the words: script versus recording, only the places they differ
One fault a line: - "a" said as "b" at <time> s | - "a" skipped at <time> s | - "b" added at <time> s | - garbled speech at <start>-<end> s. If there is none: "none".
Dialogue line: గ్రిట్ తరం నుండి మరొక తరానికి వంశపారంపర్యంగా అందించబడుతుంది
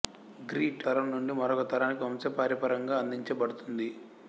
none